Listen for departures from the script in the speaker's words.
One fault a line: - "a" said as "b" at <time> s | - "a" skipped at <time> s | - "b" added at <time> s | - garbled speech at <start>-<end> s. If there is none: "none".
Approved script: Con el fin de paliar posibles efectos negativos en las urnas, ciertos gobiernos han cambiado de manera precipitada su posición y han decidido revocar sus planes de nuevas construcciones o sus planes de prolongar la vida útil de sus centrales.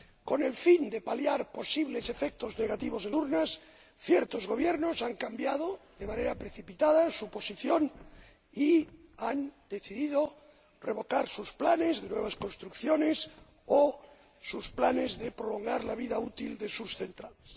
- "las" skipped at 3.1 s